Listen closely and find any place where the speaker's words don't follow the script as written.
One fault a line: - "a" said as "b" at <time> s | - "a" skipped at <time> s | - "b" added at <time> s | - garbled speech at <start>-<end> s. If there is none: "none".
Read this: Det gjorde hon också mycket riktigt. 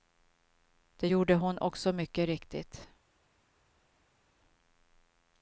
none